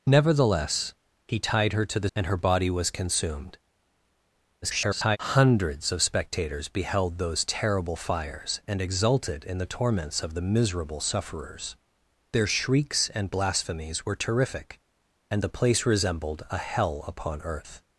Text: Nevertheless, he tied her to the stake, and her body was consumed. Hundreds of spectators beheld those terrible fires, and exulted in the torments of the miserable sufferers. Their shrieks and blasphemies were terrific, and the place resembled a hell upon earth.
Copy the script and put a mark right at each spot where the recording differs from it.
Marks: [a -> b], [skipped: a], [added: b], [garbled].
Nevertheless, he tied her to the [skipped: stake,] and her body was consumed. [garbled] Hundreds of spectators beheld those terrible fires, and exulted in the torments of the miserable sufferers. Their shrieks and blasphemies were terrific, and the place resembled a hell upon earth.